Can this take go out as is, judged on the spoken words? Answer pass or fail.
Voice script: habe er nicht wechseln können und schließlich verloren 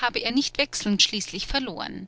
fail